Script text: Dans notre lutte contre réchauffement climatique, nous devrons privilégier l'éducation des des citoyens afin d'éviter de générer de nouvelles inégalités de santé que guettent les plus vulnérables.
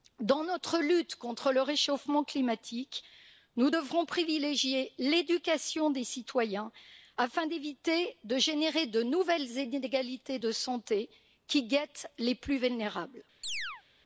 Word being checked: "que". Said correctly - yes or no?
no